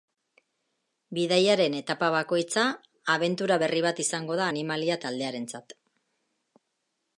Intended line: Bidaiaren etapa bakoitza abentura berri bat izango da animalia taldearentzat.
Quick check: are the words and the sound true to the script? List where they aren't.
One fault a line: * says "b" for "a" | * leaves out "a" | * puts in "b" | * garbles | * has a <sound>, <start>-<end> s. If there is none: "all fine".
all fine